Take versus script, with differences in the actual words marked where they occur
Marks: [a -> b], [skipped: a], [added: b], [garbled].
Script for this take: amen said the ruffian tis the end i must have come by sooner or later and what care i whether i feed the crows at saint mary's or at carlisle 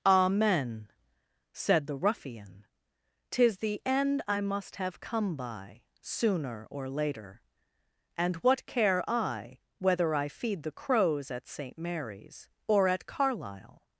amen said the ruffian tis the end i must have come by sooner or later and what care i whether i feed the crows at saint mary's or at carlisle